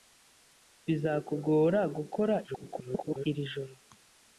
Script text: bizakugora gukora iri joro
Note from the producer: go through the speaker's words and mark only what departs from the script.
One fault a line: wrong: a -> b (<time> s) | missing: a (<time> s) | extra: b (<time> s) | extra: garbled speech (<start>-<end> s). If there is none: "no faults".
extra: garbled speech (2.5-3.3 s)